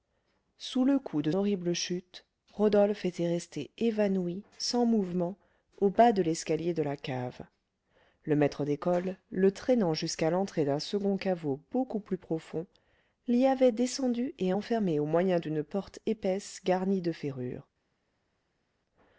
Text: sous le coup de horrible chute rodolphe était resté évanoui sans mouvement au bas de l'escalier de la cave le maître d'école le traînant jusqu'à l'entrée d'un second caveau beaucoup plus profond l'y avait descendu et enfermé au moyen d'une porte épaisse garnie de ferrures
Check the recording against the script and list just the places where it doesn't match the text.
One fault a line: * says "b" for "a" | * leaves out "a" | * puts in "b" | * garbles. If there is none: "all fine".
all fine